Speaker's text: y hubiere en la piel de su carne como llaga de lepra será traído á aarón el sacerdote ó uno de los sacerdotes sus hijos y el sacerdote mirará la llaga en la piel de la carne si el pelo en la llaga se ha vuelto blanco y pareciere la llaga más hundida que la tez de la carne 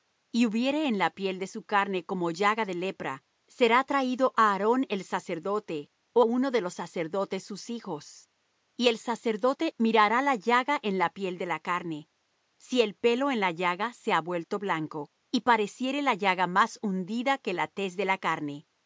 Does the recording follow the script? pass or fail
pass